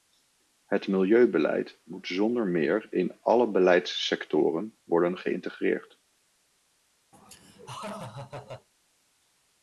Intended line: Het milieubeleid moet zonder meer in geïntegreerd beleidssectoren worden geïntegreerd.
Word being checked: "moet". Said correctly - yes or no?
yes